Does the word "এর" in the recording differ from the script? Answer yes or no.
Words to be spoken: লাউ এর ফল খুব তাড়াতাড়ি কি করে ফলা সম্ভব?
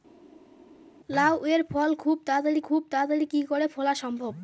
no